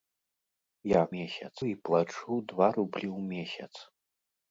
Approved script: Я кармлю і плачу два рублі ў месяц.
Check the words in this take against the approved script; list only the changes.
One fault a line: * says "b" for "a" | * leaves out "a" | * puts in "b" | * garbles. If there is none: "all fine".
* says "месяц" for "кармлю"